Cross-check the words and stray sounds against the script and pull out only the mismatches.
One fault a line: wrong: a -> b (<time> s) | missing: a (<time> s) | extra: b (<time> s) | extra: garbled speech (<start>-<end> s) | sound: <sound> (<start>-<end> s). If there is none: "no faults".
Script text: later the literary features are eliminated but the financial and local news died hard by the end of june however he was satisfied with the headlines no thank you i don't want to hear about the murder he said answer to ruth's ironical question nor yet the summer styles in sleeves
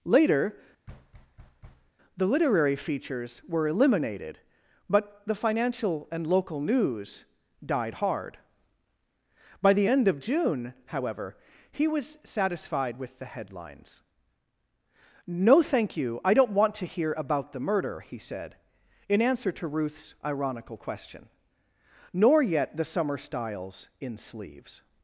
sound: thud (0.9-1.9 s)
wrong: are -> were (3.5 s)
extra: in (19.1 s)